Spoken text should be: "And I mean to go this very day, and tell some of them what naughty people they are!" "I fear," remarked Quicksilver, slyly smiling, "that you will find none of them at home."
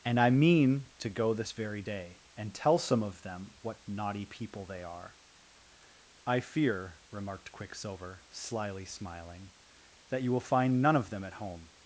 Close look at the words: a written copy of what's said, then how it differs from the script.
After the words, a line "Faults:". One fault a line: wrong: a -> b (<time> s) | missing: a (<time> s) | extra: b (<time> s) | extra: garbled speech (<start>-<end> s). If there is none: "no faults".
"And I mean to go this very day, and tell some of them what naughty people they are!" "I fear," remarked Quicksilver, slyly smiling, "that you will find none of them at home."
Faults:
no faults